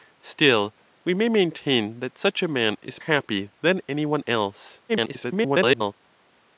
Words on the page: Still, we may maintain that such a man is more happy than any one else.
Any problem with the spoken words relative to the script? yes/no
yes